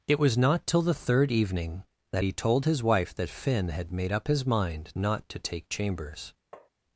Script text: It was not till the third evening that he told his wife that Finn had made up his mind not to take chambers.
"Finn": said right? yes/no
yes